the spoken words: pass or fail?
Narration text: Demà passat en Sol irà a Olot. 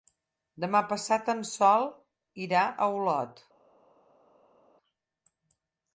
pass